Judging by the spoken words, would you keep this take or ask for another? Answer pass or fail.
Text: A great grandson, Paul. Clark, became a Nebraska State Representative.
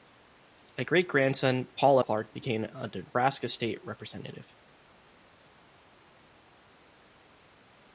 pass